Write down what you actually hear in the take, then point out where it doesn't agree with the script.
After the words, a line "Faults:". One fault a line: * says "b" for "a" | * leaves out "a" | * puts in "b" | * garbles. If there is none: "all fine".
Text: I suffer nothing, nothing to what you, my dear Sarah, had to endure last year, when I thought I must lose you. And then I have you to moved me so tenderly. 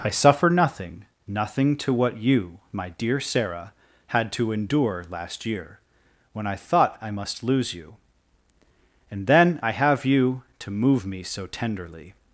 I suffer nothing, nothing to what you, my dear Sarah, had to endure last year, when I thought I must lose you. And then I have you to move me so tenderly.
Faults:
* says "move" for "moved"